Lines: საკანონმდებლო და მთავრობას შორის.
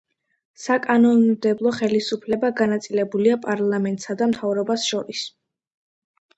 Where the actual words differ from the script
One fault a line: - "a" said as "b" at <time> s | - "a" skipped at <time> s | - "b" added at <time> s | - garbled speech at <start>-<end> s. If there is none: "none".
- "ხელისუფლება განაწილებულია პარლამენტსა" added at 1.8 s